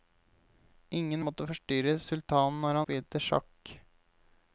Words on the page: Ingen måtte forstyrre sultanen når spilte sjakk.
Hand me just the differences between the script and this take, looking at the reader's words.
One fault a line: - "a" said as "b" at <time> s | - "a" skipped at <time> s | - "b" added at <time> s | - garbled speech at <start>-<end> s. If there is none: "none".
none